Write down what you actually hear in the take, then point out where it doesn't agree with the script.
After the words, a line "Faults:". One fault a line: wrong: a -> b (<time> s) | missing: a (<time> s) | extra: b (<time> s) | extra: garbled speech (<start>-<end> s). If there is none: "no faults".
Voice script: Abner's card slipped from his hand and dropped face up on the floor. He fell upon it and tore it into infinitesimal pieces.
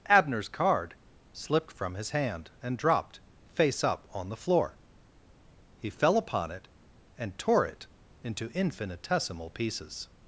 Abner's card slipped from his hand and dropped face up on the floor. He fell upon it and tore it into infinitesimal pieces.
Faults:
no faults